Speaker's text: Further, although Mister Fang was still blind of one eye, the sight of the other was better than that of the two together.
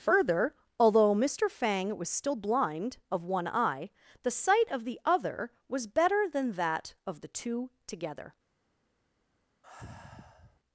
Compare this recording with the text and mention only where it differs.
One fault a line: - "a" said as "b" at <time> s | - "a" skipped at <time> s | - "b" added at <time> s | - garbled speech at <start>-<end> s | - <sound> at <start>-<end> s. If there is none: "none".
- sigh at 9.6-10.6 s